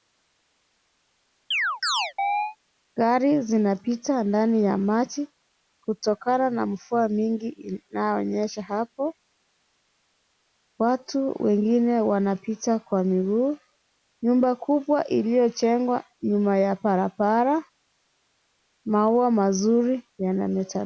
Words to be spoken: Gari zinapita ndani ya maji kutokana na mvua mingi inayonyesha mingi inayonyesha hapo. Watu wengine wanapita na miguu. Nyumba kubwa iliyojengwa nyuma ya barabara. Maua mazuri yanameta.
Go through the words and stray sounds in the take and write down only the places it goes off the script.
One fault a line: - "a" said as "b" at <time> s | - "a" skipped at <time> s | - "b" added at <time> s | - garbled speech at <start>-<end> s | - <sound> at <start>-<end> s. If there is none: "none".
- chirp at 1.5-2.6 s
- "mingi inayonyesha" skipped at 8.6 s
- "na" said as "kwa" at 12.8 s